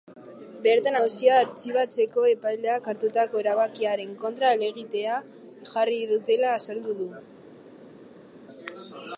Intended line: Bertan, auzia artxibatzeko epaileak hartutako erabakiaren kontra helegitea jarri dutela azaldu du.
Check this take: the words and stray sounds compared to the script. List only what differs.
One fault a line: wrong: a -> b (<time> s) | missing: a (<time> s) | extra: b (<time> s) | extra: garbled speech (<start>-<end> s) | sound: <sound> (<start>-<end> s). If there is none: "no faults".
no faults